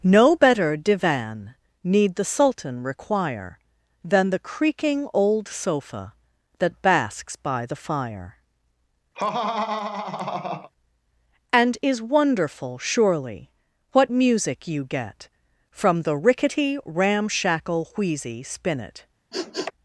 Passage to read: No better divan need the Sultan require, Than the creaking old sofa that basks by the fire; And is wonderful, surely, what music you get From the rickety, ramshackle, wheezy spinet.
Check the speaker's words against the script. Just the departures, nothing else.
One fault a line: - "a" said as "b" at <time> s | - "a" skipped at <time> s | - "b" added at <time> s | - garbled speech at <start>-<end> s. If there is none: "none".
none